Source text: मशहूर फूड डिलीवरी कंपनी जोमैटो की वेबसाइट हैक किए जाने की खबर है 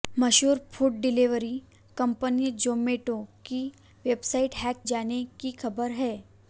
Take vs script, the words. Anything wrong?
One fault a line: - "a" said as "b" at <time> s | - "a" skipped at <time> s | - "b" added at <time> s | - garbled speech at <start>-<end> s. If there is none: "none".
- "किए" skipped at 4.8 s